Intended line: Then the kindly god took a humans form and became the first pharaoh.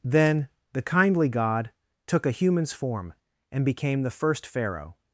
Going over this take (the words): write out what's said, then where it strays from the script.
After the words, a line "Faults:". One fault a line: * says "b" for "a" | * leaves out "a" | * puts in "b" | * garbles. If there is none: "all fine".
Then the kindly god took a humans form and became the first pharaoh.
Faults:
all fine